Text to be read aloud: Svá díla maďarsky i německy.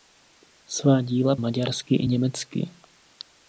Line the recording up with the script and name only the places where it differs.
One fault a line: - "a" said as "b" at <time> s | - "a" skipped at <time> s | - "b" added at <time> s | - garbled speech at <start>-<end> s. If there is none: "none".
none